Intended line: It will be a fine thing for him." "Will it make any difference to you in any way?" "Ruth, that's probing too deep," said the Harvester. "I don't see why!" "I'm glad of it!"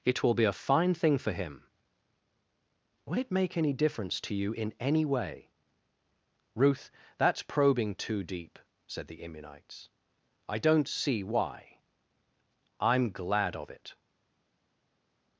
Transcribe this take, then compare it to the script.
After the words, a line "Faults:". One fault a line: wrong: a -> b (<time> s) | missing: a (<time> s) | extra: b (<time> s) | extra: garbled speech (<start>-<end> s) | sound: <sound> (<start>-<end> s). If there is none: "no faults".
It will be a fine thing for him." "Will it make any difference to you in any way?" "Ruth, that's probing too deep," said the Immunites. "I don't see why!" "I'm glad of it!"
Faults:
wrong: Harvester -> Immunites (9.2 s)